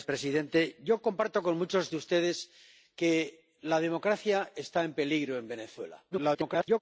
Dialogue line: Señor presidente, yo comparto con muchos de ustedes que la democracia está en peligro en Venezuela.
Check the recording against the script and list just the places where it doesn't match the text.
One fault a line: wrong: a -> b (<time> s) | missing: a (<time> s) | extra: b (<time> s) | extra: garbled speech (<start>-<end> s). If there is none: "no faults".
extra: garbled speech (6.1-6.8 s)